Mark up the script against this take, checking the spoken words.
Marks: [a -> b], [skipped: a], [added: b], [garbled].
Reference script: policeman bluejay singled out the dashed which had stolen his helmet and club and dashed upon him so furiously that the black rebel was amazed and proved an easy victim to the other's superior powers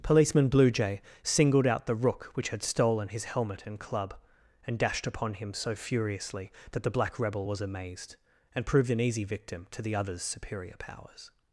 policeman bluejay singled out the [dashed -> rook] which had stolen his helmet and club and dashed upon him so furiously that the black rebel was amazed and proved an easy victim to the other's superior powers